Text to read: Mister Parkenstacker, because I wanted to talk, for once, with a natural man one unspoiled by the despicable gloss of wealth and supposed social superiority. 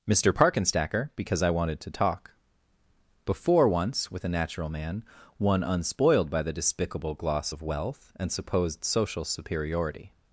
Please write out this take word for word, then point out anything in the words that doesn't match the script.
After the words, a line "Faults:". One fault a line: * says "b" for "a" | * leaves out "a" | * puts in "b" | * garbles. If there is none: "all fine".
Mister Parkenstacker, because I wanted to talk, before once, with a natural man one unspoiled by the despicable gloss of wealth and supposed social superiority.
Faults:
* says "before" for "for"